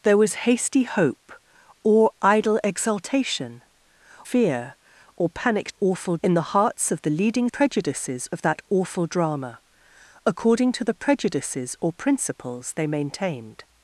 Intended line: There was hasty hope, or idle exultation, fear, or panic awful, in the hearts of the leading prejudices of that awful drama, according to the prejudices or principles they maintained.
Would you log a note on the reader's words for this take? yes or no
no